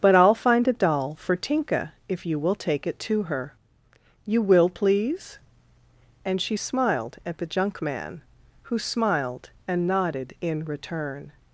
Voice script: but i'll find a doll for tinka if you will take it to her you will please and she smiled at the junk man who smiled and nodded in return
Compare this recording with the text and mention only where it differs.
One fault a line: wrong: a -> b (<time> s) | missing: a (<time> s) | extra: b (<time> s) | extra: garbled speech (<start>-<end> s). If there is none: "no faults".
no faults